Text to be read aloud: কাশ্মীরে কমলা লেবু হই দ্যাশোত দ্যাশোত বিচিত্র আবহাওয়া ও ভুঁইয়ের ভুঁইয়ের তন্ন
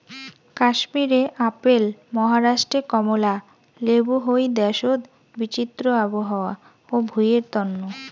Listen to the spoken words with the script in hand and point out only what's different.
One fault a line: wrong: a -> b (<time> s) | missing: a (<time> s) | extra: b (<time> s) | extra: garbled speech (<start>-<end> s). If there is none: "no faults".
extra: আপেল মহারাষ্ট্রে (1.5 s)
missing: দ্যাশোত (5.0 s)
missing: ভুঁইয়ের (7.4 s)